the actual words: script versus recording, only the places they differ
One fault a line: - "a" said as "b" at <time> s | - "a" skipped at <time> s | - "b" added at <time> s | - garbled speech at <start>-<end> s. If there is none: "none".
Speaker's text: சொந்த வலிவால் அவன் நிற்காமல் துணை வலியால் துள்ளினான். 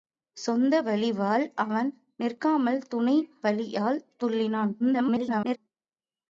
- garbled speech at 4.8-5.6 s